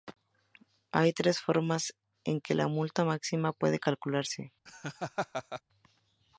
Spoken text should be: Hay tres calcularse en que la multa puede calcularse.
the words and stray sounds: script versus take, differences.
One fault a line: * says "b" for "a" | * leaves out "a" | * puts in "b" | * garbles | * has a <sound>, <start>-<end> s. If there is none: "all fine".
* says "formas" for "calcularse"
* puts in "máxima"
* has a laugh, 4.7-5.6 s